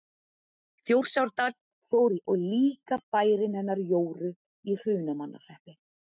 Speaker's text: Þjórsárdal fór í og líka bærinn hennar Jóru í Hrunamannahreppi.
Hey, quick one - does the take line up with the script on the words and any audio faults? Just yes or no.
yes